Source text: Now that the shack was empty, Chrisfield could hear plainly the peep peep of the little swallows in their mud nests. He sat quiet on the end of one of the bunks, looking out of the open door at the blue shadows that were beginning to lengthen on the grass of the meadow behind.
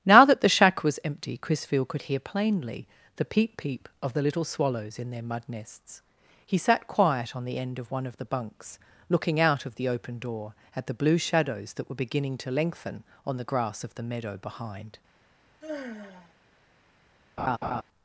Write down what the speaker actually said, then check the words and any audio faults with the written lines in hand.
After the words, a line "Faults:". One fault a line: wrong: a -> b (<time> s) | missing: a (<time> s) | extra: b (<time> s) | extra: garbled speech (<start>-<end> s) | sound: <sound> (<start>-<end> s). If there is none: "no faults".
Now that the shack was empty, Chrisfield could hear plainly the peep peep of the little swallows in their mud nests. He sat quiet on the end of one of the bunks, looking out of the open door at the blue shadows that were beginning to lengthen on the grass of the meadow behind.
Faults:
sound: sigh (15.6-16.3 s)
sound: laugh (17.4-17.8 s)